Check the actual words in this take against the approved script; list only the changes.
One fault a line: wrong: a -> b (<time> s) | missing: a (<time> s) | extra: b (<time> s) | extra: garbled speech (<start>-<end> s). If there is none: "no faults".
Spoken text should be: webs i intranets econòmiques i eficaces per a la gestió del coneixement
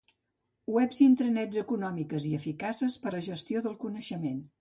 missing: a (3.1 s)